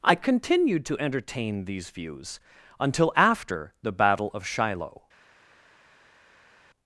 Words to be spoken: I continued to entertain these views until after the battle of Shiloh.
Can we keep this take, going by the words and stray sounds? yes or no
yes